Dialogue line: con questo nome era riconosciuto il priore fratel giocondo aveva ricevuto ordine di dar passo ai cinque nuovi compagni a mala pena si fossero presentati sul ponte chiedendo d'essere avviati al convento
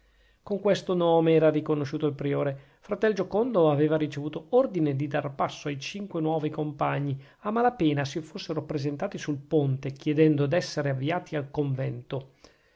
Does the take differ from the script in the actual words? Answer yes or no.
no